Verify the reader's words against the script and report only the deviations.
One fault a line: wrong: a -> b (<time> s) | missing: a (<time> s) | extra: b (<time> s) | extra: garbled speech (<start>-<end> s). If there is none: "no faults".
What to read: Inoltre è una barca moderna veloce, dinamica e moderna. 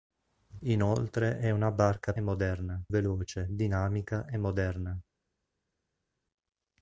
no faults